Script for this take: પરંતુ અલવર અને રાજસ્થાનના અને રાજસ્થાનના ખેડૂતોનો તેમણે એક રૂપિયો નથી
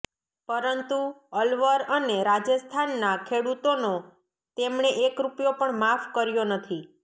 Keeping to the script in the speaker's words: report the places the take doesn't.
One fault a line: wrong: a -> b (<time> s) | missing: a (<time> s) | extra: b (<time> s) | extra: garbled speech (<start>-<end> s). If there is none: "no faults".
missing: અને રાજસ્થાનના (3.1 s)
extra: પણ માફ કર્યો (5.6 s)